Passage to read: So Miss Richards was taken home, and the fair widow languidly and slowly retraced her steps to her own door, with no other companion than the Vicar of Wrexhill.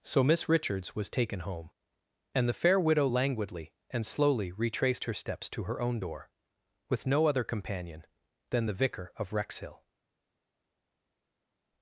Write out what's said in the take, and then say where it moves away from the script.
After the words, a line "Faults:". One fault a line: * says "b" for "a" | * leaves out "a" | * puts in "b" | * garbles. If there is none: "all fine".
So Miss Richards was taken home, and the fair widow languidly and slowly retraced her steps to her own door, with no other companion than the Vicar of Wrexhill.
Faults:
all fine